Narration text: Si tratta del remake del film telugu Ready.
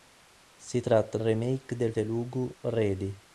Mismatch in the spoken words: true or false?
true